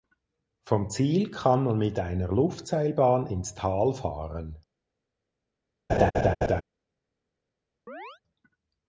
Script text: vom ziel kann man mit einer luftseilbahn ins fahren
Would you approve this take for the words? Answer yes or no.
no